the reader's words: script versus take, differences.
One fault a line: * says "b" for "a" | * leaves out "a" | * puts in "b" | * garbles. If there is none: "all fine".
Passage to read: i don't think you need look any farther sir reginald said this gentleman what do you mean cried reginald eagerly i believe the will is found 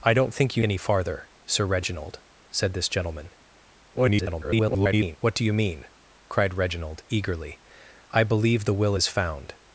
* leaves out "need look"
* garbles